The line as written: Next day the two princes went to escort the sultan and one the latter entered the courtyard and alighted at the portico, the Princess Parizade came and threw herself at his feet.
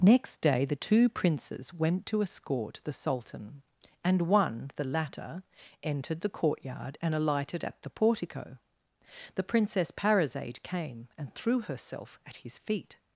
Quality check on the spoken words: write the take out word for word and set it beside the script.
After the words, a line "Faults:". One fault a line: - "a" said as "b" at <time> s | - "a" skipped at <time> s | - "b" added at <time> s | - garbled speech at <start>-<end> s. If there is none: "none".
Next day the two princes went to escort the sultan and one the latter entered the courtyard and alighted at the portico, the Princess Parizade came and threw herself at his feet.
Faults:
none